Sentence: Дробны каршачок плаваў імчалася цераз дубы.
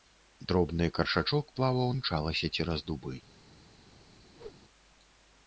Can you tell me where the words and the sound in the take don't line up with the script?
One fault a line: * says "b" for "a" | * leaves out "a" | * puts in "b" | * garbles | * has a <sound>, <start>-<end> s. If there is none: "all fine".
* has a whoosh, 4.3-4.6 s